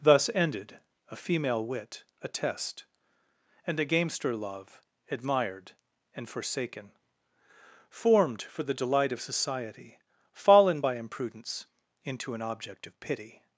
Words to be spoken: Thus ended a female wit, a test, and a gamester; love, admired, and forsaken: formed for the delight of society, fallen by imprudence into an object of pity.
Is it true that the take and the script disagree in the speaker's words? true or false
false